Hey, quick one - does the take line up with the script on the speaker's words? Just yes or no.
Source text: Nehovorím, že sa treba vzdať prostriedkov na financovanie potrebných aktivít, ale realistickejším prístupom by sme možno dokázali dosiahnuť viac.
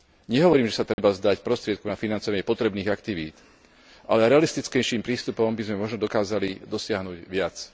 yes